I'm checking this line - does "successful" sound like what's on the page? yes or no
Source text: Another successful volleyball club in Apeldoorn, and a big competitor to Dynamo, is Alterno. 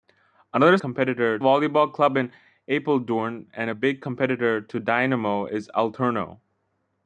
no